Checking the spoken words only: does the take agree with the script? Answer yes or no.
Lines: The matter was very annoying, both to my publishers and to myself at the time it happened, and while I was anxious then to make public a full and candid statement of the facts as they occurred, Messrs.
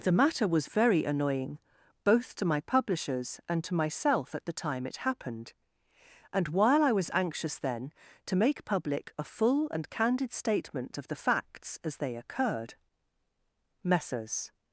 yes